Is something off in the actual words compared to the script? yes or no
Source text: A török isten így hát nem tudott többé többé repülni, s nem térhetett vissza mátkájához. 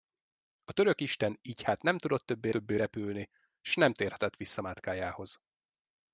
no